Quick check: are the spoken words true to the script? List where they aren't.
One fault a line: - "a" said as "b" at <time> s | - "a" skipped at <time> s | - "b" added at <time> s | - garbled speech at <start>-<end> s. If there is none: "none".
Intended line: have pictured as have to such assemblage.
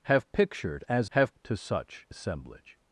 none